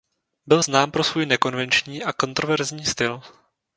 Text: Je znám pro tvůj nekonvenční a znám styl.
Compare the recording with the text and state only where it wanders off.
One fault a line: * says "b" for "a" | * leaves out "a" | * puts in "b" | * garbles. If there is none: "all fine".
* says "Byl" for "Je"
* says "svůj" for "tvůj"
* says "kontroverzní" for "znám"